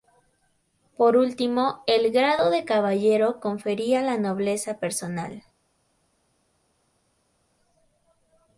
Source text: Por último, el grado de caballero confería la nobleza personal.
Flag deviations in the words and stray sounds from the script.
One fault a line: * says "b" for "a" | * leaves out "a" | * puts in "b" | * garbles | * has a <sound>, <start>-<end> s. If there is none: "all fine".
all fine